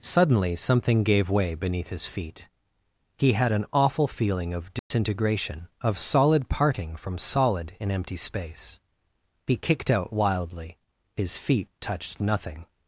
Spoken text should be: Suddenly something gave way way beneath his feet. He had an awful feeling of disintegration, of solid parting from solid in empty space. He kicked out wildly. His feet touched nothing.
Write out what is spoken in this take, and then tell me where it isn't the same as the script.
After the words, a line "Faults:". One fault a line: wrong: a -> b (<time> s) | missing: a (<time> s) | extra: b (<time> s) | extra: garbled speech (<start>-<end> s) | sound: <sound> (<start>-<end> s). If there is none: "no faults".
Suddenly something gave way beneath his feet. He had an awful feeling of disintegration, of solid parting from solid in empty space. He kicked out wildly. His feet touched nothing.
Faults:
missing: way (1.5 s)
sound: dropout (4.8-4.9 s)